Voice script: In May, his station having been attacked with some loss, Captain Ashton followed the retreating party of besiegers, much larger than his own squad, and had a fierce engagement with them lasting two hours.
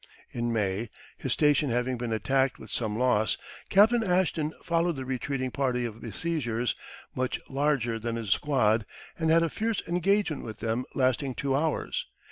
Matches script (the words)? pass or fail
fail